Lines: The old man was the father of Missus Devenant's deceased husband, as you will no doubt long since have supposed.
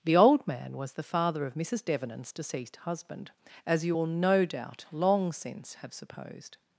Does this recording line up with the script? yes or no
yes